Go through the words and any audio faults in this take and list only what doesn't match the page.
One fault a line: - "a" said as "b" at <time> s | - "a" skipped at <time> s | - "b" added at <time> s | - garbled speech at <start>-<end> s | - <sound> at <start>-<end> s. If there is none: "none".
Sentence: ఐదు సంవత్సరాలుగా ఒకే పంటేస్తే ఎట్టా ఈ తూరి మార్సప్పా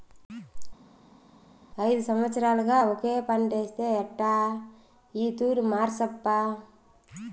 none